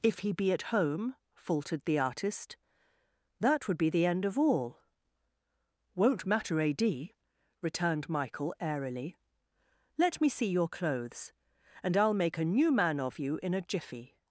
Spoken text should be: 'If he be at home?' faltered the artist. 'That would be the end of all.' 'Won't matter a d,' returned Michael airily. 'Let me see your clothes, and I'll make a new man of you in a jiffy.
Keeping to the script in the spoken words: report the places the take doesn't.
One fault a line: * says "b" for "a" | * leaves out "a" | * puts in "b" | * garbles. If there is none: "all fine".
all fine